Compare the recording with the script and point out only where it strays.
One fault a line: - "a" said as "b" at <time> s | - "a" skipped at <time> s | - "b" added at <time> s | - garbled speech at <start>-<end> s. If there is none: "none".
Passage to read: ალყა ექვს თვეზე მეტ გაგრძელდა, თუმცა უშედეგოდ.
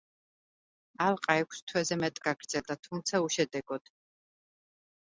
none